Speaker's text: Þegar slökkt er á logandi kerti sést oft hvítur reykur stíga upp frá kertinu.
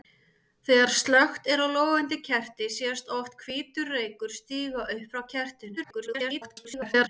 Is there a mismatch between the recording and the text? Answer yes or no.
yes